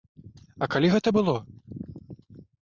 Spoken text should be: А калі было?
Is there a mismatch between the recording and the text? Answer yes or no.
yes